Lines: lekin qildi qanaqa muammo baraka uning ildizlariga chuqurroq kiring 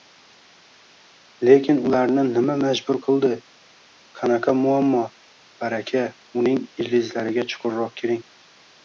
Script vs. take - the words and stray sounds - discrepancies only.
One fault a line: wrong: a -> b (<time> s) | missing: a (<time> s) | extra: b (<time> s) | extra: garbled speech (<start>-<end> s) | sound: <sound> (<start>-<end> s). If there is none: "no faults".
extra: ularni nima majbur (1.9 s)